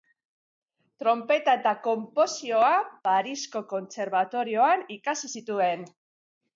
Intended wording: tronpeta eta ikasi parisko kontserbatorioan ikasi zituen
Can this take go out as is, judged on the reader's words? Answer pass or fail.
fail